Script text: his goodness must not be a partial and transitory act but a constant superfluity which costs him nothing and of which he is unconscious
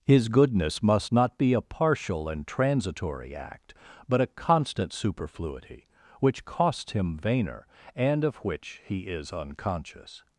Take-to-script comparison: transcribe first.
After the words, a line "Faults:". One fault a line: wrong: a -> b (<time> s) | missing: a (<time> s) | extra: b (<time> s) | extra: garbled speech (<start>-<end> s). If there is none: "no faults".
his goodness must not be a partial and transitory act but a constant superfluity which costs him vainer and of which he is unconscious
Faults:
wrong: nothing -> vainer (7.2 s)